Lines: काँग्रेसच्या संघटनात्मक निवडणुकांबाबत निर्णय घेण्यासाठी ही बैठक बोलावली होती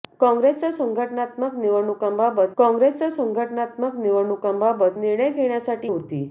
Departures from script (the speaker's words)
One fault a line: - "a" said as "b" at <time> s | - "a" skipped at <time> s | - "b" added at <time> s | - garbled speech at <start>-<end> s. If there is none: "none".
- "निर्णय घेण्यासाठी ही बैठक बोलावली" said as "काँग्रेसच्या संघटनात्मक निवडणुकांबाबत निर्णय घेण्यासाठी" at 2.6 s